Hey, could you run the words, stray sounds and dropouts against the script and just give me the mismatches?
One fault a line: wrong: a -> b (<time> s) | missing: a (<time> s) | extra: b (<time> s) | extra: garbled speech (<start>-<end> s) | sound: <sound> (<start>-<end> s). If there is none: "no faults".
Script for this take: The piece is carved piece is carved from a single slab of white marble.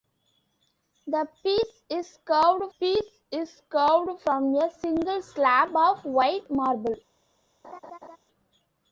sound: laugh (7.6-8.2 s)